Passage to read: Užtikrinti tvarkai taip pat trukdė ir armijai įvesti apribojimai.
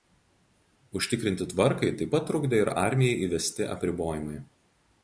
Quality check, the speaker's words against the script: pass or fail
pass